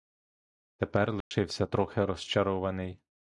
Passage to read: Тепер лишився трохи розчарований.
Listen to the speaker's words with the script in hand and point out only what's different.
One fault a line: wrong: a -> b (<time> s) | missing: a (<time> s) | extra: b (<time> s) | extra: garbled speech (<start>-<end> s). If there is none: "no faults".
no faults